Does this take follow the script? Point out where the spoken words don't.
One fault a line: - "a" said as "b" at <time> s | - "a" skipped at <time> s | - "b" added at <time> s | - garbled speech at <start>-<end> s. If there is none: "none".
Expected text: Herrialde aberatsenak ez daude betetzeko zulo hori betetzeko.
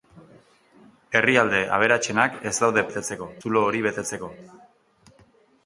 none